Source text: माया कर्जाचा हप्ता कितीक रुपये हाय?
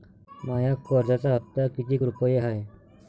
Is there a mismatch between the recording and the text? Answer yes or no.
no